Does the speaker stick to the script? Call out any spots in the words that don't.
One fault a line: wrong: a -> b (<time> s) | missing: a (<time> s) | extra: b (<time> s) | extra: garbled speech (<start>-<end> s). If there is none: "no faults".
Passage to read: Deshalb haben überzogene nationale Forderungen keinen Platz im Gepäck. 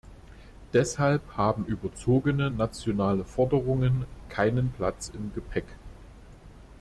no faults